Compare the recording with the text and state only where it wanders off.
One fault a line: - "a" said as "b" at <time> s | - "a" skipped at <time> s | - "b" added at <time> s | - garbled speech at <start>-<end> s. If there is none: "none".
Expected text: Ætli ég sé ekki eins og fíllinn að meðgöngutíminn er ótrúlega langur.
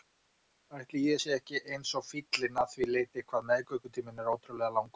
- "því leyti hvað" added at 2.8 s